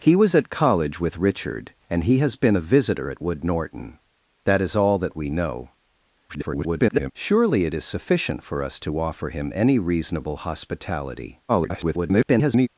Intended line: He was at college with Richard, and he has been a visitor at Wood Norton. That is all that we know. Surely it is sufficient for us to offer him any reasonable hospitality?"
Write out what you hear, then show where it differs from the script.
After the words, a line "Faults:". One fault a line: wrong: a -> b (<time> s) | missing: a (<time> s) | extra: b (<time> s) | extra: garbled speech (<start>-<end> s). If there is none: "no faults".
He was at college with Richard, and he has been a visitor at Wood Norton. That is all that we know. [garbled] Surely it is sufficient for us to offer him any reasonable hospitality?" [garbled]
Faults:
extra: garbled speech (6.3-7.1 s)
extra: garbled speech (11.5-12.7 s)